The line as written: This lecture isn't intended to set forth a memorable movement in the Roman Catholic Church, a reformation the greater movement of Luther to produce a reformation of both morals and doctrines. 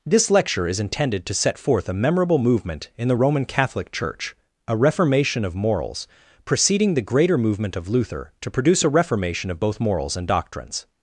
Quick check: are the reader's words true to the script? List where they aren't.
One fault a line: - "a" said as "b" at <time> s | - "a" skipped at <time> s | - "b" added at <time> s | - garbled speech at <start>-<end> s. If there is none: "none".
- "isn't" said as "is" at 0.7 s
- "of morals preceding" added at 5.4 s